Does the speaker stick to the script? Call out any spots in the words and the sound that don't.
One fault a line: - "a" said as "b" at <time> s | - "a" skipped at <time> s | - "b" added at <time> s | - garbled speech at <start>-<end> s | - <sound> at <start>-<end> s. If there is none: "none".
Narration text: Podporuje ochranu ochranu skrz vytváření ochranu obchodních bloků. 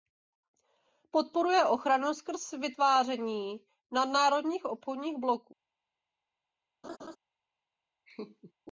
- "ochranu" skipped at 2.1 s
- "ochranu" said as "nadnárodních" at 3.9 s
- laugh at 6.8-7.2 s
- laugh at 8.1-8.5 s